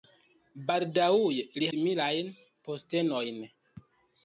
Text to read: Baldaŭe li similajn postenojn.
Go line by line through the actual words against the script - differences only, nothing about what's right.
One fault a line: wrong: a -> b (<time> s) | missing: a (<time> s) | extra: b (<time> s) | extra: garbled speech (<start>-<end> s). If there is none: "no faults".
no faults